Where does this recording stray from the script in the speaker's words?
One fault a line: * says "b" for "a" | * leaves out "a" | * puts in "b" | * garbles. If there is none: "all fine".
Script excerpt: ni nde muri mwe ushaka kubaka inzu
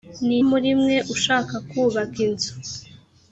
* leaves out "nde"